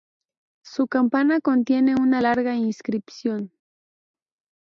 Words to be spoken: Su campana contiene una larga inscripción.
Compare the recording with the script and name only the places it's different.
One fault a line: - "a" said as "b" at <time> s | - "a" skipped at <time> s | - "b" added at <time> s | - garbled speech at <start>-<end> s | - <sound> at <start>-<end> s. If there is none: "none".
none